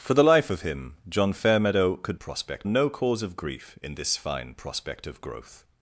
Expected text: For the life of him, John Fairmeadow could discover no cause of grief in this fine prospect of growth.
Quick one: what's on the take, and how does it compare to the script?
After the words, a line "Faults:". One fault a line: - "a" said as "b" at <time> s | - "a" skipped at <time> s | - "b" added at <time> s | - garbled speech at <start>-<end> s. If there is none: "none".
For the life of him, John Fairmeadow could prospect no cause of grief in this fine prospect of growth.
Faults:
- "discover" said as "prospect" at 2.2 s